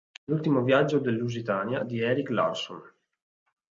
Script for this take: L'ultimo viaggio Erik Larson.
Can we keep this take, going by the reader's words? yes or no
no